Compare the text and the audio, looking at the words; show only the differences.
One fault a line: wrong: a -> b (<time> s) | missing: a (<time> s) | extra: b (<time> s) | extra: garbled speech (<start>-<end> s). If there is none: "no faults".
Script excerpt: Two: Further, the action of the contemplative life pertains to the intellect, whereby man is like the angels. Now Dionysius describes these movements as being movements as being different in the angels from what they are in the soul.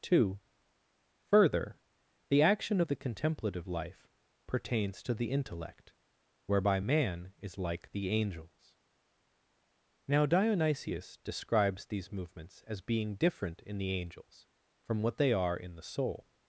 missing: movements as being (13.1 s)